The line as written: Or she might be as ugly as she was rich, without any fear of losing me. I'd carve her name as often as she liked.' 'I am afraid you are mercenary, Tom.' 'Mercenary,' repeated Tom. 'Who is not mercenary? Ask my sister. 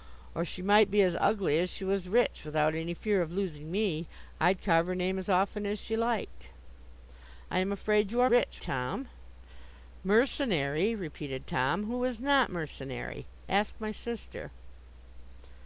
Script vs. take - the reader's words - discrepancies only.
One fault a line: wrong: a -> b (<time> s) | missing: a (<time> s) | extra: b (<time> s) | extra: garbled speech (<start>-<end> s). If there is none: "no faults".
wrong: mercenary -> rich (8.3 s)